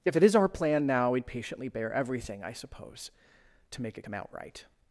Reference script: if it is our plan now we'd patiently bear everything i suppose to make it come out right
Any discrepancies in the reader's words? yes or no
no